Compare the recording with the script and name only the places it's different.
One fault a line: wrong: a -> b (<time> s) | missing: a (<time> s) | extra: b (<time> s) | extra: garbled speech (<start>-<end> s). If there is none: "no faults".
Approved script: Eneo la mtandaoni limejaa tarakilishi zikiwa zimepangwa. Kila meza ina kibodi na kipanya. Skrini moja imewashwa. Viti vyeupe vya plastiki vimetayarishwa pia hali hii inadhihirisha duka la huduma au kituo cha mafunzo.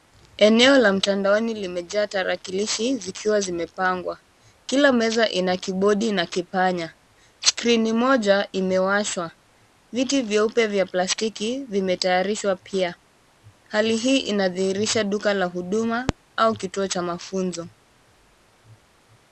no faults